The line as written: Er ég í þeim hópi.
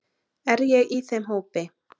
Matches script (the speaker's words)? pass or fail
pass